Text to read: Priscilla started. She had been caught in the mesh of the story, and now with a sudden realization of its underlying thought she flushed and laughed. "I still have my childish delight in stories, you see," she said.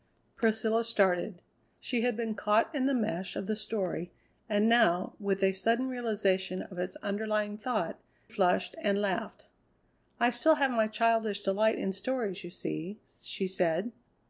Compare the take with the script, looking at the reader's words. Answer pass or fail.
fail